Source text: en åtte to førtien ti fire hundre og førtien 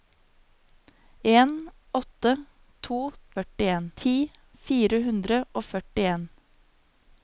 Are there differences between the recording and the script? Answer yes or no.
no